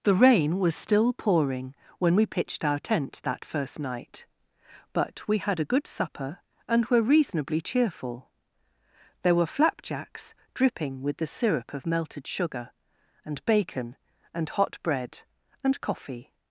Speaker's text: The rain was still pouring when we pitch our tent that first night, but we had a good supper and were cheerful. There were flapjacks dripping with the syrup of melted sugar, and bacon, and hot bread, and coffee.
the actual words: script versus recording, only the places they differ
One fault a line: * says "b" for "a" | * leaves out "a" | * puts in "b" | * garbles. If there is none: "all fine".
* says "pitched" for "pitch"
* puts in "reasonably"